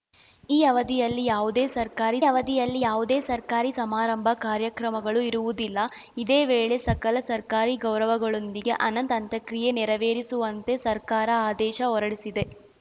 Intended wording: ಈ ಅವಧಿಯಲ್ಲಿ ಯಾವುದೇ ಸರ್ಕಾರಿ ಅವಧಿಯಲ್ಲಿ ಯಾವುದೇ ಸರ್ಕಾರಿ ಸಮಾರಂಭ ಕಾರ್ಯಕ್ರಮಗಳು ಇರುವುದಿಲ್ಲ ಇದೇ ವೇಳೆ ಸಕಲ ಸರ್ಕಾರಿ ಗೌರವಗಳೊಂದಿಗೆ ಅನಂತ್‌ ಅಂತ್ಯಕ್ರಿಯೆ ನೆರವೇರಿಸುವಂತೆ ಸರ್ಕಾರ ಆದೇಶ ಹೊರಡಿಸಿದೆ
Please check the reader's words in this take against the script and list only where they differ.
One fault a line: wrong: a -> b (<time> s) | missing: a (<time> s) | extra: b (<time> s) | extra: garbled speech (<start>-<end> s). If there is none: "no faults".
no faults